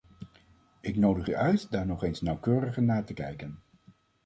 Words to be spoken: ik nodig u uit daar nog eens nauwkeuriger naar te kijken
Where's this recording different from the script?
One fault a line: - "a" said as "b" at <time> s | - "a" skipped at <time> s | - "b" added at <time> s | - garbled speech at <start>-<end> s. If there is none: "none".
none